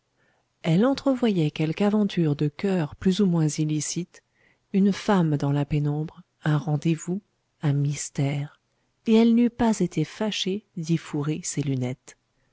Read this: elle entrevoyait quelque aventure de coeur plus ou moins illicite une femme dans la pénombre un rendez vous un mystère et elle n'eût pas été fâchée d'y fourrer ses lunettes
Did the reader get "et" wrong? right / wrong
right